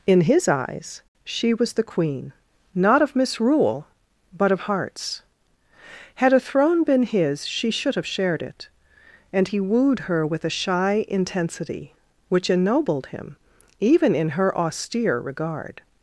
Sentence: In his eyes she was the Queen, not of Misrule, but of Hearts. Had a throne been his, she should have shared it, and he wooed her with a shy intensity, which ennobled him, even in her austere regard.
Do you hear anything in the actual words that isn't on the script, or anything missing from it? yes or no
no